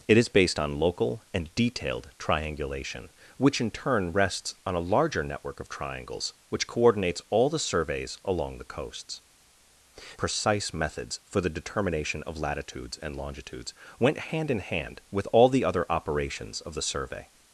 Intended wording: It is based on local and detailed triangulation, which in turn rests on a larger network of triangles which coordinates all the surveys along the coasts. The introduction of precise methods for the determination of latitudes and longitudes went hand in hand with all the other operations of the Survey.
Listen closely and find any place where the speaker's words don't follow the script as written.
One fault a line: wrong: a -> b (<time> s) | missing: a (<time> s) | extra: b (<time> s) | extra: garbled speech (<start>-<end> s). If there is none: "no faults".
missing: The introduction of (9.2 s)